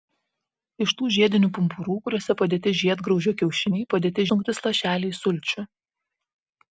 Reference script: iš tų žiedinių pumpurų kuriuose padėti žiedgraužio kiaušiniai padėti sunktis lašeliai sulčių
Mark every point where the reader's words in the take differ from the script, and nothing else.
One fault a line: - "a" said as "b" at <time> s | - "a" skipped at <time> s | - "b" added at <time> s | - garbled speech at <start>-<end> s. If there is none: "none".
none